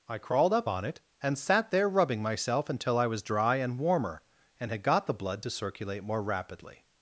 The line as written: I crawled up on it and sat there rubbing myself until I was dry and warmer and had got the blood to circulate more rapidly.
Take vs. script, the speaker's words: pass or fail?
pass